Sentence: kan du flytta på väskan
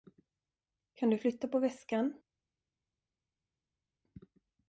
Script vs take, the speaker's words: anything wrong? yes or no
no